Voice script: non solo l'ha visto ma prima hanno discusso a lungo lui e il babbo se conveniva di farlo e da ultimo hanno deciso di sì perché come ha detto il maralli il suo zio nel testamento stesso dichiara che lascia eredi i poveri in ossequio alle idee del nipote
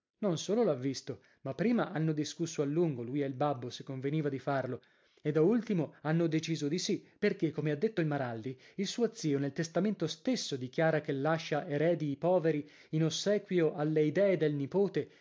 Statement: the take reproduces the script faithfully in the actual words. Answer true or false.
true